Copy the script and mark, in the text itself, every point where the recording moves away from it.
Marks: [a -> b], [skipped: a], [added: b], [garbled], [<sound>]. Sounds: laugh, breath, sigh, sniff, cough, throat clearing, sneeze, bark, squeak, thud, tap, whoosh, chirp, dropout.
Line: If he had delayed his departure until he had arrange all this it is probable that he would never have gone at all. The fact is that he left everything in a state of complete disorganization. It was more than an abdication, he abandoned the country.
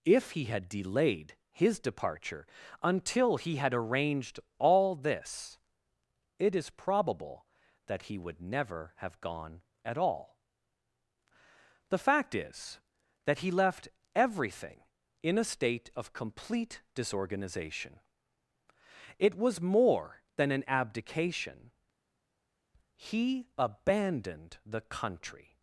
If he had delayed his departure until he had [arrange -> arranged] all this it is probable that he would never have gone at all. The fact is that he left everything in a state of complete disorganization. It was more than an abdication, he abandoned the country.